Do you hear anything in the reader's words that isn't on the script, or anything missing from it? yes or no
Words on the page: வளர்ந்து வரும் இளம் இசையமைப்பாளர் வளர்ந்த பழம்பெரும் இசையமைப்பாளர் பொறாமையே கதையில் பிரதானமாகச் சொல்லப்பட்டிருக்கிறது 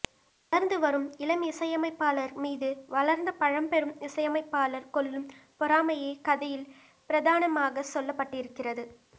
yes